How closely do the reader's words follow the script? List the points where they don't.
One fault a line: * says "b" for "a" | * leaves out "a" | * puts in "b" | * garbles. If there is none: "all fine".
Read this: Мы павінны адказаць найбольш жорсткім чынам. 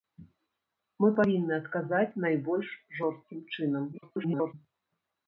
* garbles